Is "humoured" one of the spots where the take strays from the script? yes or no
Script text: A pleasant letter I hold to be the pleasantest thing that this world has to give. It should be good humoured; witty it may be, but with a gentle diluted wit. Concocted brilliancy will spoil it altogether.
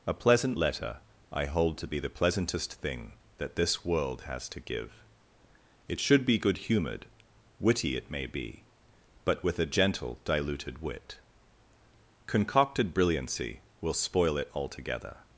no